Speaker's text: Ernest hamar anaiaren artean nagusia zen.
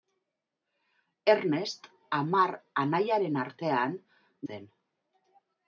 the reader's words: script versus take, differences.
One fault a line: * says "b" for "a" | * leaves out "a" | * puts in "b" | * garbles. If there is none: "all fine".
* leaves out "nagusia"